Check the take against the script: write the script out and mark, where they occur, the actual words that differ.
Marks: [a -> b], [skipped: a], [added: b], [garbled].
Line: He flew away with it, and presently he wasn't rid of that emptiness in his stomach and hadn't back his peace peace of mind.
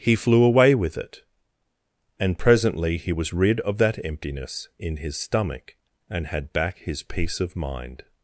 He flew away with it, and presently he [wasn't -> was] rid of that emptiness in his stomach and [hadn't -> had] back his peace [skipped: peace] of mind.